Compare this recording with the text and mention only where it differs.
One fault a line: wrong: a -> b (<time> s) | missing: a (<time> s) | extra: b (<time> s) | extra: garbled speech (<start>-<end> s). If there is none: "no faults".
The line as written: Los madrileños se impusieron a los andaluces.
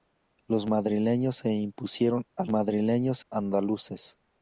wrong: los -> madrileños (2.5 s)